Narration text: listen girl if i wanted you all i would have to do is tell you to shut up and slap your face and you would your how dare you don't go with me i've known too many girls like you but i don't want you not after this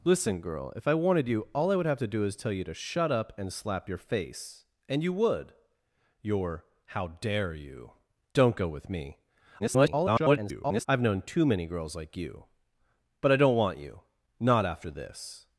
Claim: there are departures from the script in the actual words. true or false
true